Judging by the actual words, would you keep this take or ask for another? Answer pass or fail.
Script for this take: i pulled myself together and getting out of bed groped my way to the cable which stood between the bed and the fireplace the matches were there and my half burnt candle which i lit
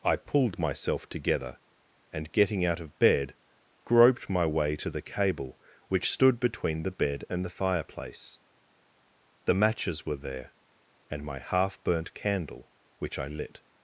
pass